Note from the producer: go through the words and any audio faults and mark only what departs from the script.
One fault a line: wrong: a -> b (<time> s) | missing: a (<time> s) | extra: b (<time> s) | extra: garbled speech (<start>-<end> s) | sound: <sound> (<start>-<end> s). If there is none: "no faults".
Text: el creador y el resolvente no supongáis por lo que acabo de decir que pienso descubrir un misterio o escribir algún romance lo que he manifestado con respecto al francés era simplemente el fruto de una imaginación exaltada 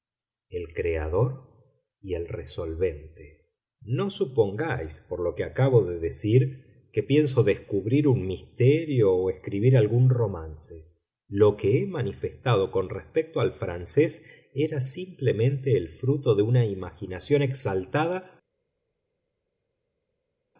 no faults